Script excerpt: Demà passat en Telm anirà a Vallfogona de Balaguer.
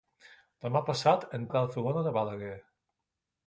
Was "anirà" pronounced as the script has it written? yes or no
no